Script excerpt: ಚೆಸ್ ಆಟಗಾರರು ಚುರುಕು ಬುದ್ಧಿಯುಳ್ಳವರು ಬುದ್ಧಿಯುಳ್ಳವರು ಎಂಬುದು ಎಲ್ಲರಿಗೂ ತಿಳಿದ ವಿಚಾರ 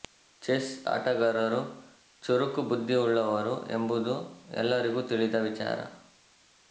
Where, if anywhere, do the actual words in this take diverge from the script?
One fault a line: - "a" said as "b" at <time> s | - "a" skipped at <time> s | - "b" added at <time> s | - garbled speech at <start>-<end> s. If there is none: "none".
- "ಬುದ್ಧಿಯುಳ್ಳವರು" skipped at 3.5 s